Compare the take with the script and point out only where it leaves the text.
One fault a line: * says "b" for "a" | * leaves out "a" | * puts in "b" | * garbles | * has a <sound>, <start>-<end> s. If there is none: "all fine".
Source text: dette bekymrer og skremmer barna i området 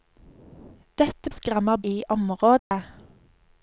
* leaves out "bekymrer"
* leaves out "barna"
* has a dropout, 2.6-2.7 s